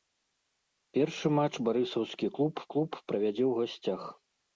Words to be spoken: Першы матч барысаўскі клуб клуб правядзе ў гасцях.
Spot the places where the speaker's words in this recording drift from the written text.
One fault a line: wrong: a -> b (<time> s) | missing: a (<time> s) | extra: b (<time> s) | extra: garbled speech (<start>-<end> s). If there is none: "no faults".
no faults